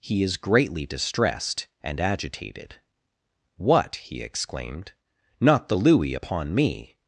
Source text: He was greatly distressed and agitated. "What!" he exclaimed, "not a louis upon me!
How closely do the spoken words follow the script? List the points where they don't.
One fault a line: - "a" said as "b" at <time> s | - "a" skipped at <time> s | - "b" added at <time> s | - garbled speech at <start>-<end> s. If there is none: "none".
- "was" said as "is" at 0.2 s
- "a" said as "the" at 5.7 s